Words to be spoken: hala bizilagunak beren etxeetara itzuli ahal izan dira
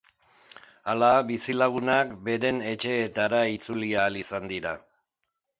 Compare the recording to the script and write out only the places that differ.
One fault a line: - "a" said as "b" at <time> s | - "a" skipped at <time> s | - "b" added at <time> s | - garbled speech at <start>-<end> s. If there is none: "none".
none